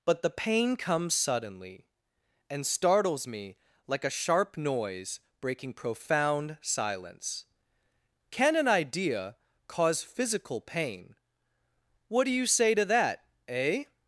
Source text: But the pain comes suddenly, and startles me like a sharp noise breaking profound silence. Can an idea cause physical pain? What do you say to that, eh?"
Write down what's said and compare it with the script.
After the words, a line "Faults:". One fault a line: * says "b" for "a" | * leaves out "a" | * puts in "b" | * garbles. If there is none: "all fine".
But the pain comes suddenly, and startles me like a sharp noise breaking profound silence. Can an idea cause physical pain? What do you say to that, eh?"
Faults:
all fine